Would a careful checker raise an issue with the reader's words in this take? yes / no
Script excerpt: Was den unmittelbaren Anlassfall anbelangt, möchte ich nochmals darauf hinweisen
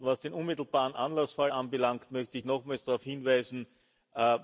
no